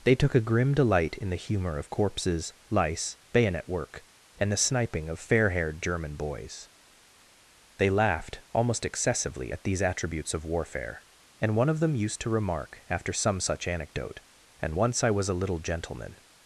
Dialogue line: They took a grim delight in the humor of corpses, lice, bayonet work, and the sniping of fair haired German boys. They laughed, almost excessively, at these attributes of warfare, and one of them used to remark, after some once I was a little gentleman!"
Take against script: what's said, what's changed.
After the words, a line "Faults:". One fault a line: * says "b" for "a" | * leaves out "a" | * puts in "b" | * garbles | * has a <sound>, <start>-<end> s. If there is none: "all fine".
They took a grim delight in the humor of corpses, lice, bayonet work, and the sniping of fair haired German boys. They laughed, almost excessively, at these attributes of warfare, and one of them used to remark, after some such anecdote, "And once I was a little gentleman!"
Faults:
* puts in "such anecdote And"